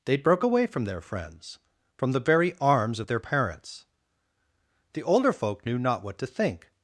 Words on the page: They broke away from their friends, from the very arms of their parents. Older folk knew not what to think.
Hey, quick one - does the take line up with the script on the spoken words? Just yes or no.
no